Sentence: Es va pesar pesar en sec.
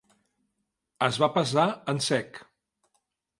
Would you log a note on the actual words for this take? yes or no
yes